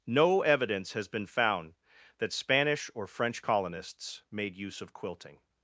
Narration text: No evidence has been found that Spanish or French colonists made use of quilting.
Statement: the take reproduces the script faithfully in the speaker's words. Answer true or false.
true